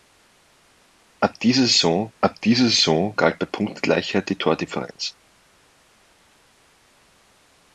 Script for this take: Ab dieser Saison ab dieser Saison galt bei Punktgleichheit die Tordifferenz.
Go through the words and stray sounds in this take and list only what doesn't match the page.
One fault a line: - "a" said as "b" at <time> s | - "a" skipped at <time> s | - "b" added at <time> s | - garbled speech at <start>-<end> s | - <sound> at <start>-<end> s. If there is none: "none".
none